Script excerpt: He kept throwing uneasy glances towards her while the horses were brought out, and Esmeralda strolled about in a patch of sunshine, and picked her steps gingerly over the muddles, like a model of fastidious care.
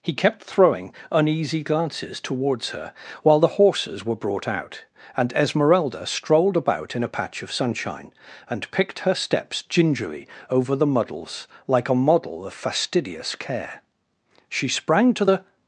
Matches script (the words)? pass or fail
fail